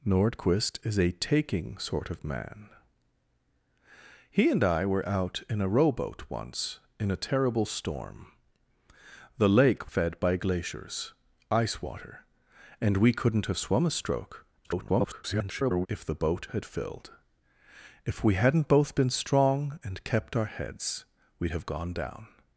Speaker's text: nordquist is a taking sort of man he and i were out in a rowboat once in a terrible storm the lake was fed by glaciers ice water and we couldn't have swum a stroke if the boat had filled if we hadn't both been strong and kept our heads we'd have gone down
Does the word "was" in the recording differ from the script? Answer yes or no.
yes